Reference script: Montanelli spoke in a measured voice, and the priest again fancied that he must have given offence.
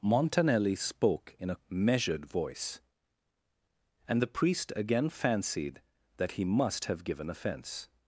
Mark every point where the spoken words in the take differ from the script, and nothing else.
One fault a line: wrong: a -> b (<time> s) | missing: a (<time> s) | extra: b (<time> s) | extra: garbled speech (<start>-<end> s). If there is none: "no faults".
no faults